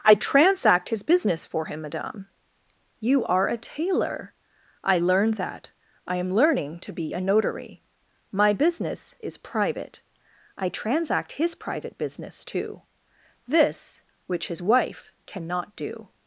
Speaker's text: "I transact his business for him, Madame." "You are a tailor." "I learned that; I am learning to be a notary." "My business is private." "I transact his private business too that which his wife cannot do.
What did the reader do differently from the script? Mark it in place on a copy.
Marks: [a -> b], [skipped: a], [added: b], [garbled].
"I transact his business for him, Madame." "You are a tailor." "I learned that; I am learning to be a notary." "My business is private." "I transact his private business too [that -> this] which his wife cannot do.